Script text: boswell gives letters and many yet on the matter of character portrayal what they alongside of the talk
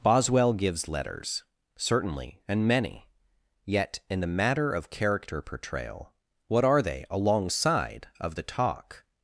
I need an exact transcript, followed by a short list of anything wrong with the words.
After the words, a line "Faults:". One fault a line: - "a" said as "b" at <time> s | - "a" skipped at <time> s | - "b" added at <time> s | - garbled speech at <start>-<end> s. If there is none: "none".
boswell gives letters certainly and many yet in the matter of character portrayal what are they alongside of the talk
Faults:
- "certainly" added at 1.8 s
- "on" said as "in" at 4.1 s
- "are" added at 6.7 s